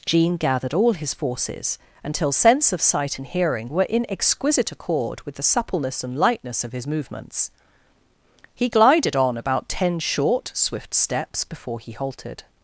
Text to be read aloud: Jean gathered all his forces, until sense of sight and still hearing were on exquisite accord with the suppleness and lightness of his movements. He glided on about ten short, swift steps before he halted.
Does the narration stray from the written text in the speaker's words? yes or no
yes